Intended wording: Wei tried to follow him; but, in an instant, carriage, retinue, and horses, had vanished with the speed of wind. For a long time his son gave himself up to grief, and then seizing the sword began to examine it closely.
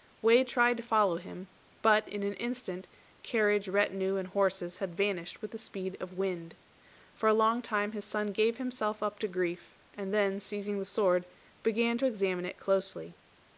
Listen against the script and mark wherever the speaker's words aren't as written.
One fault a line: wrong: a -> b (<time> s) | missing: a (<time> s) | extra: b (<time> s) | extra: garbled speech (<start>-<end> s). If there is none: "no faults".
no faults